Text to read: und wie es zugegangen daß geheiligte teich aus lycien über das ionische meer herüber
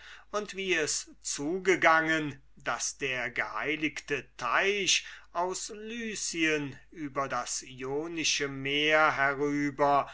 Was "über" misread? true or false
false